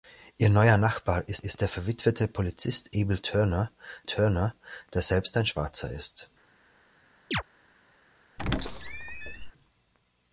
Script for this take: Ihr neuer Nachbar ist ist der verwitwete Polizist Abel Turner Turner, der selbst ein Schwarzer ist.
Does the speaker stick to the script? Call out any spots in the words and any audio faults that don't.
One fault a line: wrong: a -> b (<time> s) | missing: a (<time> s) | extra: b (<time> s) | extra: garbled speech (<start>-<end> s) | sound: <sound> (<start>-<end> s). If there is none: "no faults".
sound: chirp (7.3-7.4 s)
sound: squeak (8.4-9.5 s)